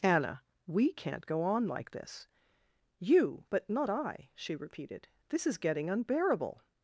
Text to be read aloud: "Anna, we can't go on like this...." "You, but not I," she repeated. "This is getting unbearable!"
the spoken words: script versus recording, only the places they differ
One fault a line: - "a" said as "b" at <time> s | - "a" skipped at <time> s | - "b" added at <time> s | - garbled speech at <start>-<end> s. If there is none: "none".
none